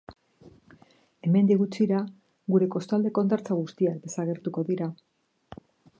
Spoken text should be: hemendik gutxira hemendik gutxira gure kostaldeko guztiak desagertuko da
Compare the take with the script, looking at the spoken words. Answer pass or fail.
fail